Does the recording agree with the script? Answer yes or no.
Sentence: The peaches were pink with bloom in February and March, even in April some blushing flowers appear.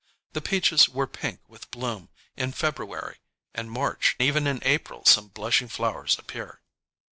yes